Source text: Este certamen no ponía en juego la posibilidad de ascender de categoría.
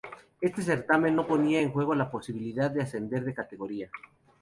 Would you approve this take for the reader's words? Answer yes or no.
yes